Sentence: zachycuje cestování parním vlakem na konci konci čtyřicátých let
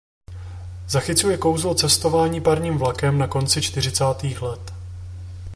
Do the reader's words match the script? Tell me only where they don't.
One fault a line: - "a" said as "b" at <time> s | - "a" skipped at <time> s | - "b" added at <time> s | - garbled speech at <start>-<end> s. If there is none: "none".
- "kouzlo" added at 1.4 s
- "konci" skipped at 3.6 s